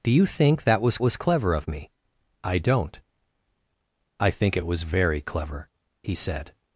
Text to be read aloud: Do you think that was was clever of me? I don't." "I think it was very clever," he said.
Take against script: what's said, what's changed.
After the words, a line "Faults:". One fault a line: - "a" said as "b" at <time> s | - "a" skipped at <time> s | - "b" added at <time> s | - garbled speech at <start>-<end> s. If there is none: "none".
Do you think that was was clever of me? I don't." "I think it was very clever," he said.
Faults:
none